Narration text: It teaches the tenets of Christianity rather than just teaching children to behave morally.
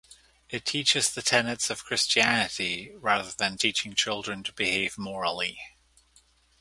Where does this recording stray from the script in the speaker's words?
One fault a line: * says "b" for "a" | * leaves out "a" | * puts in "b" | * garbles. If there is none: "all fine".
* leaves out "just"